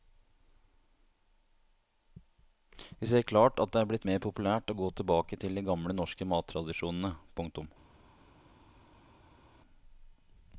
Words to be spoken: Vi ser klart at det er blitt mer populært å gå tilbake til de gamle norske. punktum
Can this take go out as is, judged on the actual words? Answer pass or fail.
fail